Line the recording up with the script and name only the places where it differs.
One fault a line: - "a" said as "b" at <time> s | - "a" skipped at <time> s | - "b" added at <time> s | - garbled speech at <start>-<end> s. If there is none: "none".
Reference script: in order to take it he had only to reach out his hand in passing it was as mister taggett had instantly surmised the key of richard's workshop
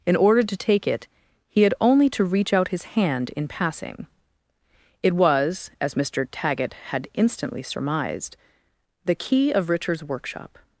none